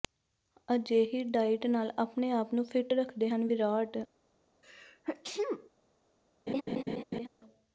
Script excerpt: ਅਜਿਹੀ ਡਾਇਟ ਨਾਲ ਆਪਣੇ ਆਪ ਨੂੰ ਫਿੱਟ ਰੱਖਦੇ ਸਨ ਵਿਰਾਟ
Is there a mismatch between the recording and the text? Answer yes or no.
yes